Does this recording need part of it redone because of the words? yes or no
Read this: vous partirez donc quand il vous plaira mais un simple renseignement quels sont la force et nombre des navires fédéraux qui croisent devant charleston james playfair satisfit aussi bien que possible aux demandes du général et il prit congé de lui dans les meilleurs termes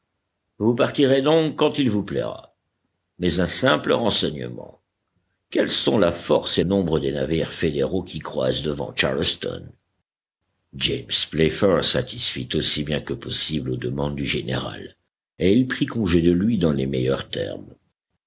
no